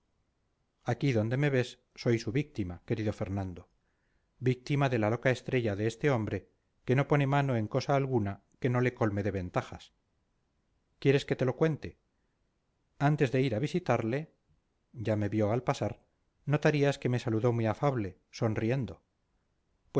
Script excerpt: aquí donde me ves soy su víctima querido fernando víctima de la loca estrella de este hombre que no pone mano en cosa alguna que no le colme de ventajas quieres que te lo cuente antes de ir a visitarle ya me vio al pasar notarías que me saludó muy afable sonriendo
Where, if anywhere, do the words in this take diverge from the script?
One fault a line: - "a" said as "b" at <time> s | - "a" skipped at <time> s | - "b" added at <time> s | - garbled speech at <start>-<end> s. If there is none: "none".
none